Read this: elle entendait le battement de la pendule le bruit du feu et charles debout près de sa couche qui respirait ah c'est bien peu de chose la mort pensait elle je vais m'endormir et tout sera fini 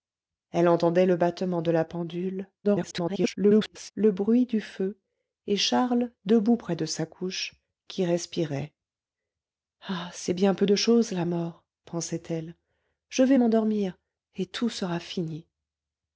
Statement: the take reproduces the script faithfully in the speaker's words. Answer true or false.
false